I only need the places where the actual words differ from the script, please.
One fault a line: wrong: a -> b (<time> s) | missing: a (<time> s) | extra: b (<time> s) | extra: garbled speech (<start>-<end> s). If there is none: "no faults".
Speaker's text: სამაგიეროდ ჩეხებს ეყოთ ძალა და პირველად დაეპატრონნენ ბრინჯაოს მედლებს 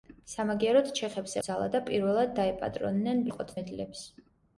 missing: ეყოთ (1.4 s)
wrong: ბრინჯაოს -> ეყოთ (3.3 s)